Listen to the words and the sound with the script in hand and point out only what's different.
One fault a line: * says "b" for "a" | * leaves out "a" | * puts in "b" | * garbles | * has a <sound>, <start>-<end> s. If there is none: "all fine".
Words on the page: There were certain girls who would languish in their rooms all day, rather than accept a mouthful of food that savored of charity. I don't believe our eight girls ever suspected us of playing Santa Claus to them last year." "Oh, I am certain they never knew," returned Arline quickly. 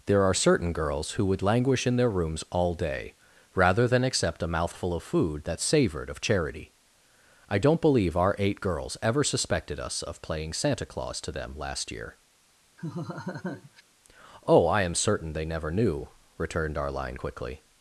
* says "are" for "were"
* has a laugh, 12.8-13.8 s